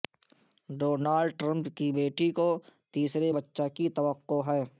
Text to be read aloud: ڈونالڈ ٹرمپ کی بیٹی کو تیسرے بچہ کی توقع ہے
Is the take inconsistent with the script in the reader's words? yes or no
no